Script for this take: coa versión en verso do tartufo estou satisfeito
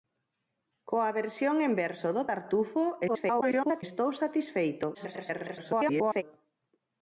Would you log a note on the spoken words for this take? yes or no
yes